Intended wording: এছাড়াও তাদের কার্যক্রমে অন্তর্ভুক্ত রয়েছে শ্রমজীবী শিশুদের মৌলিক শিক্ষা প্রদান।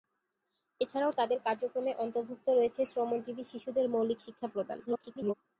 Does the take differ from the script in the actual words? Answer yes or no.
yes